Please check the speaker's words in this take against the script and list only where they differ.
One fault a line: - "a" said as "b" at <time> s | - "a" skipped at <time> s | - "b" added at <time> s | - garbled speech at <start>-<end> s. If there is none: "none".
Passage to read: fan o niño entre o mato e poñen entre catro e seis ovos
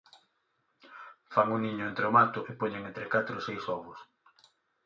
none